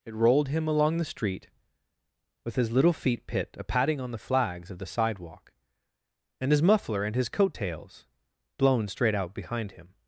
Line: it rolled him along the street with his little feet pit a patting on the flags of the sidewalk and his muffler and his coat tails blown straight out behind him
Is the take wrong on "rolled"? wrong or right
right